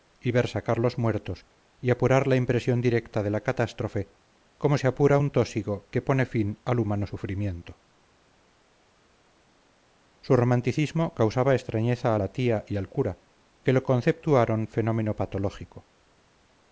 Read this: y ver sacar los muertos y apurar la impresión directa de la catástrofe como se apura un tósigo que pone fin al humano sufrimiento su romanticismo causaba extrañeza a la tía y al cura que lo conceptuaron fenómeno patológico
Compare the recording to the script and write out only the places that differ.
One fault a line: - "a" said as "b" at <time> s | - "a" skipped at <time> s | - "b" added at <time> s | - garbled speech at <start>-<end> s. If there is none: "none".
none